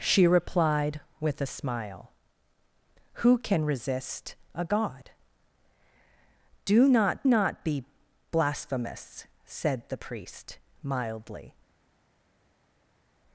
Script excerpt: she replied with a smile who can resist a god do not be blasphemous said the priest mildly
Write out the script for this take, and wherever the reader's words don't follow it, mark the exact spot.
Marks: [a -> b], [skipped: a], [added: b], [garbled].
she replied with a smile who can resist a god do not [added: not] be blasphemous said the priest mildly